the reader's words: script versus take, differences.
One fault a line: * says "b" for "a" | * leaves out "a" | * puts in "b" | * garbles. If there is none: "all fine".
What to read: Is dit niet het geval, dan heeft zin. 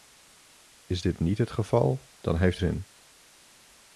all fine